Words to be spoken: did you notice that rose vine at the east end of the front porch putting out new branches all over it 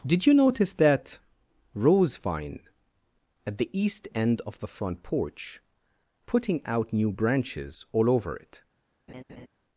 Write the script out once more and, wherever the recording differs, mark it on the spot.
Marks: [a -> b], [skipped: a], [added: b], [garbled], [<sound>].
did you notice that rose vine at the east end of the front porch putting out new branches all over it [laugh]